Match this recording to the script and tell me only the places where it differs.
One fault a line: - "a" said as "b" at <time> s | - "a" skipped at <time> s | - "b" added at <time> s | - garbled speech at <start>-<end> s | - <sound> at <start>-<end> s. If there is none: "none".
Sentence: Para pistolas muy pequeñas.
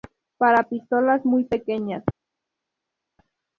none